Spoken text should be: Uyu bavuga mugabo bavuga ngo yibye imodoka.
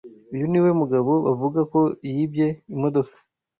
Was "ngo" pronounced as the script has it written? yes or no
no